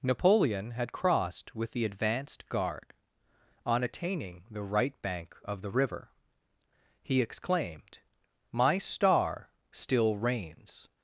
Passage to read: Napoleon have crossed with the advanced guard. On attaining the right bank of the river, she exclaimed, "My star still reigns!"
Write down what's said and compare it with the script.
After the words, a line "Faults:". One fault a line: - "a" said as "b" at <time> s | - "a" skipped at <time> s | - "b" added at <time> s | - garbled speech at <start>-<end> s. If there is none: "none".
Napoleon had crossed with the advanced guard. On attaining the right bank of the river, he exclaimed, "My star still reigns!"
Faults:
- "have" said as "had" at 0.7 s
- "she" said as "he" at 7.0 s